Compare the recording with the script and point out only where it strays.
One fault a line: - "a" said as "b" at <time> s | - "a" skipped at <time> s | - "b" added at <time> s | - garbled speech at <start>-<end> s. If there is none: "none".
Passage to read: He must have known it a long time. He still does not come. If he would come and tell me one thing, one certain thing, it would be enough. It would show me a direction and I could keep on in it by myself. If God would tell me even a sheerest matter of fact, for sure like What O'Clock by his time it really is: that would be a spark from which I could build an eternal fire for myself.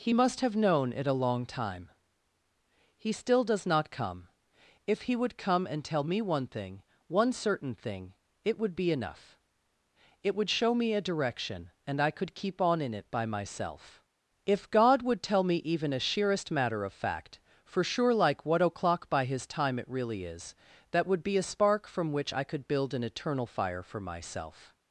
none